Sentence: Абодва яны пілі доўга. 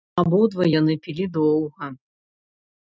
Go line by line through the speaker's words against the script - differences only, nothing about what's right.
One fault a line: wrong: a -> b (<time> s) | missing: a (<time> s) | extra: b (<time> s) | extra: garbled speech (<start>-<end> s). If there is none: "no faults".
no faults